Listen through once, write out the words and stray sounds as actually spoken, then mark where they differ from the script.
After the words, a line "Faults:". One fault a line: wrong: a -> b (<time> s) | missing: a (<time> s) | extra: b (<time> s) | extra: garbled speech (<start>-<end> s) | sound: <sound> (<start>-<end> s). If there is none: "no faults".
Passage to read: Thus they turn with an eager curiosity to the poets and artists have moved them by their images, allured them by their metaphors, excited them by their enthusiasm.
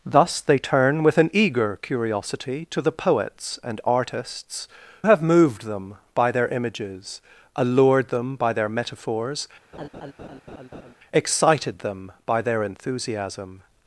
Thus they turn with an eager curiosity to the poets and artists have moved them by their images, allured them by their metaphors, excited them by their enthusiasm.
Faults:
sound: laugh (9.7-10.9 s)